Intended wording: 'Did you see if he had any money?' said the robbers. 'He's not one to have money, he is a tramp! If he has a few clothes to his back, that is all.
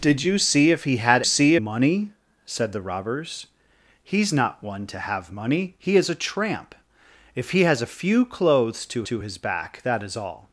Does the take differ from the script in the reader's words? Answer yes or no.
yes